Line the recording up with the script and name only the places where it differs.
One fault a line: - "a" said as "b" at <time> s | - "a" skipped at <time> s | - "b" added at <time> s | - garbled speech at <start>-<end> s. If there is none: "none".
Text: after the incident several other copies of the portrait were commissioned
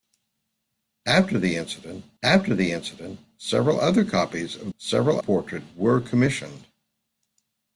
- "after the incident" added at 2.2 s
- "the" said as "several" at 4.8 s